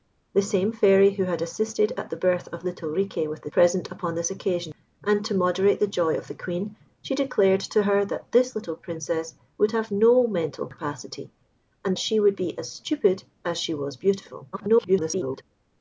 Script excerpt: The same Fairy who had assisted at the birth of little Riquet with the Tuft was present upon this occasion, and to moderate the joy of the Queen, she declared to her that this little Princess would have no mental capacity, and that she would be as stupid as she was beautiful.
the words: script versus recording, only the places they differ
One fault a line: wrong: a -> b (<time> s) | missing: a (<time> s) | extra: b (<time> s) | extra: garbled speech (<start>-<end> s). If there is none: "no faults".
missing: Tuft was (3.5 s)
missing: that (12.0 s)
extra: garbled speech (14.5-15.4 s)